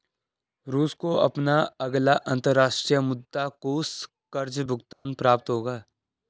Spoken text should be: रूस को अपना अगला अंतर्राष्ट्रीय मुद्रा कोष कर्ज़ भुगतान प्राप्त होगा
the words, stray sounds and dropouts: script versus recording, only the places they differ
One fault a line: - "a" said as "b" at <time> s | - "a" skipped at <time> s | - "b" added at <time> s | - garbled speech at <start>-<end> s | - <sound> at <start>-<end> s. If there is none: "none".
- dropout at 4.9-5.1 s